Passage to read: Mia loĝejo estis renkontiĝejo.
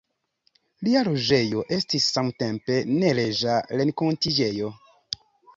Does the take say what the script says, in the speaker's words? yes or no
no